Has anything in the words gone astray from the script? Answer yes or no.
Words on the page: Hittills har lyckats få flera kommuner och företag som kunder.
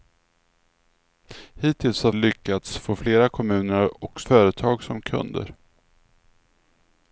no